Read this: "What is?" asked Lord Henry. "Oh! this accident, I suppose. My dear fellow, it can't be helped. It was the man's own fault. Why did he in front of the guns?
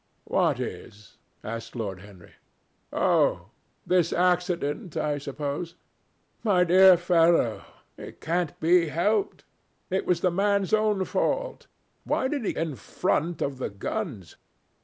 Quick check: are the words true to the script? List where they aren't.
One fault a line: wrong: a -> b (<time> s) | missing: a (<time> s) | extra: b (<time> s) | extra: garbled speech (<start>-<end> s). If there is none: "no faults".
no faults